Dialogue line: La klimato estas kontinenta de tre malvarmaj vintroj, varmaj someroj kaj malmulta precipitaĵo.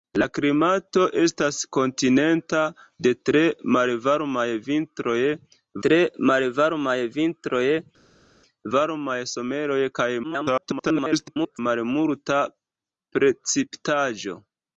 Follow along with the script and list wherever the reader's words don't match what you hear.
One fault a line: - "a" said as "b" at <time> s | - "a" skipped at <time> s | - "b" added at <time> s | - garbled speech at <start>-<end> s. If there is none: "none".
- "tre malvarmaj vintroj" added at 5.9 s
- garbled speech at 10.2-11.6 s